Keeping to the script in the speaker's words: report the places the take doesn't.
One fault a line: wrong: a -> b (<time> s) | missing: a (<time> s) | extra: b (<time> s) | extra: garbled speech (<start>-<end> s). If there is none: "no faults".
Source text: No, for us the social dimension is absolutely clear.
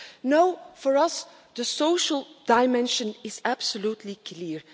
no faults